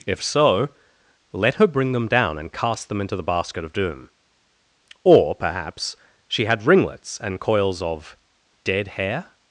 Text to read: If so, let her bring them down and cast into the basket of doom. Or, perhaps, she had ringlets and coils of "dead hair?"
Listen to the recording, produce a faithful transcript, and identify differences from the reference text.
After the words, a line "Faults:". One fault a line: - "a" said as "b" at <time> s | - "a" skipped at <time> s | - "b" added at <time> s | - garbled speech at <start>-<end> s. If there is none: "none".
If so, let her bring them down and cast them into the basket of doom. Or, perhaps, she had ringlets and coils of "dead hair?"
Faults:
- "them" added at 2.9 s